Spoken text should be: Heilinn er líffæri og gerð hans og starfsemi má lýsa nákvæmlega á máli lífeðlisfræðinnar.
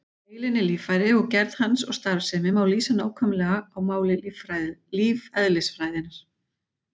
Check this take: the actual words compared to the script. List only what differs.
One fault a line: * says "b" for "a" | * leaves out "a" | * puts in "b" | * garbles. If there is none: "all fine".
all fine